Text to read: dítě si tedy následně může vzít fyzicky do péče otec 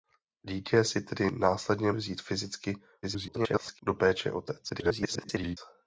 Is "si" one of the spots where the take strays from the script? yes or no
no